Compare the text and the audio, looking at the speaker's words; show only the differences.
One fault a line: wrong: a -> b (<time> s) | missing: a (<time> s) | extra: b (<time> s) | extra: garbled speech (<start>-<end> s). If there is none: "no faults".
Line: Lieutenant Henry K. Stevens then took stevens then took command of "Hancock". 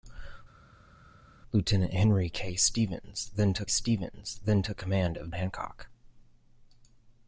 no faults